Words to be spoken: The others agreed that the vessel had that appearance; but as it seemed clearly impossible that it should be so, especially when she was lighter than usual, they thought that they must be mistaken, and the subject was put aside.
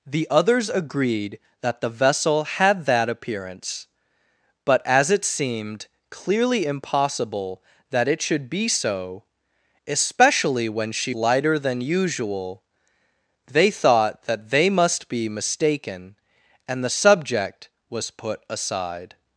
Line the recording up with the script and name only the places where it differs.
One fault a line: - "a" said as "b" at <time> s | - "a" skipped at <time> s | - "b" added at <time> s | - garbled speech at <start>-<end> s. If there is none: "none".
- "was" skipped at 11.1 s